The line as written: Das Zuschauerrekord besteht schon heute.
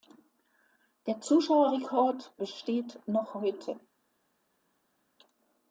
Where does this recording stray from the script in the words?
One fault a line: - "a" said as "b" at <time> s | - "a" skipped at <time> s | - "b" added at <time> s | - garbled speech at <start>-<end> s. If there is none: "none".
- "Das" said as "Der" at 1.1 s
- "schon" said as "noch" at 3.0 s